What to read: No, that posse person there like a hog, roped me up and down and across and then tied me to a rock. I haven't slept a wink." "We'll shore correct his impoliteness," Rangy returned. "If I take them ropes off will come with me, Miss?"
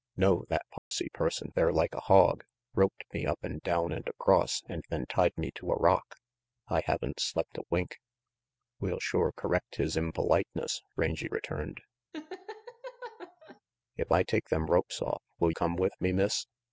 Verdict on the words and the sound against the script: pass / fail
fail